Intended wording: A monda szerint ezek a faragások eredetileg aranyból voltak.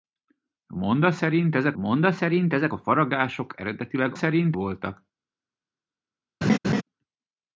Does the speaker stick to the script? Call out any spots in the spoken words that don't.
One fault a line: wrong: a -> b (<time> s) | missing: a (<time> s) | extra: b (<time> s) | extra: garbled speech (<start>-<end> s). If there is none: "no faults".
extra: monda szerint ezek (1.8 s)
wrong: aranyból -> szerint (4.1 s)